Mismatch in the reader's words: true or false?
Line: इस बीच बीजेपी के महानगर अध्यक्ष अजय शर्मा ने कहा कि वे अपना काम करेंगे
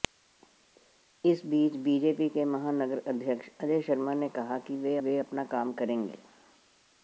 true